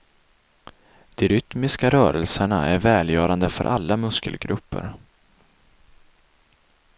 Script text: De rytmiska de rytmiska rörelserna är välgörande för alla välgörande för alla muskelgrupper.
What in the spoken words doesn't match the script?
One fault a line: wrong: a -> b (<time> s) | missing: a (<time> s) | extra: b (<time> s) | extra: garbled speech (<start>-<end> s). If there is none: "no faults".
missing: de rytmiska (1.9 s)
missing: välgörande för alla (4.0 s)